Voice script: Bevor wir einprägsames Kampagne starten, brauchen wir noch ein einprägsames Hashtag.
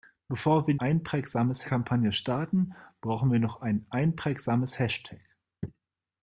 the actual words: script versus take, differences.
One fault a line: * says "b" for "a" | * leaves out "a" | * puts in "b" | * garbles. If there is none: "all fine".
all fine